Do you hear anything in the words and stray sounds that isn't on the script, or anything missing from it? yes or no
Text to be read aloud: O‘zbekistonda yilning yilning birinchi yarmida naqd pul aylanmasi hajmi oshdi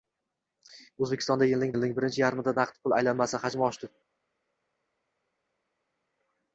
no